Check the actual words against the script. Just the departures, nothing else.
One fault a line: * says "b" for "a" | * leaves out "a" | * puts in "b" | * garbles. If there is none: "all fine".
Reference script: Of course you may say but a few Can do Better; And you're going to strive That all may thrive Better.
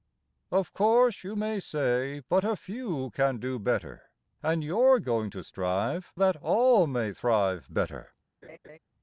all fine